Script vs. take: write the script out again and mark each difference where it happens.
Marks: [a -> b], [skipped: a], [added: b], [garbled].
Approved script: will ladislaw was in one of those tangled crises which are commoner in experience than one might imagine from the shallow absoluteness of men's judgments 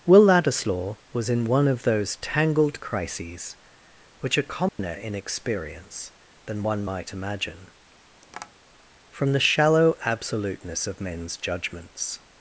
will ladislaw was in one of those tangled crises which are commoner in experience than one might imagine from the shallow absoluteness of men's judgments